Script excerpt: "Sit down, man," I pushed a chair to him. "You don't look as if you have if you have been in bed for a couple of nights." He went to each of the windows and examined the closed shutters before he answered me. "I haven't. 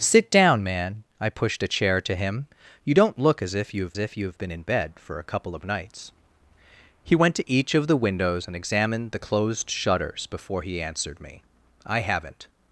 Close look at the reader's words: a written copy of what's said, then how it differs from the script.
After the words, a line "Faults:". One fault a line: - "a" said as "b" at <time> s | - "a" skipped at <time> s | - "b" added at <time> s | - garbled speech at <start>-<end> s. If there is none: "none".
"Sit down, man," I pushed a chair to him. "You don't look as if you have if you have been in bed for a couple of nights." He went to each of the windows and examined the closed shutters before he answered me. "I haven't.
Faults:
none